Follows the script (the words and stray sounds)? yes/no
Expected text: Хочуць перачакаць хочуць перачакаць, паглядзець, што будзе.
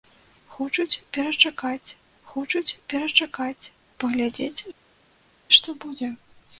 yes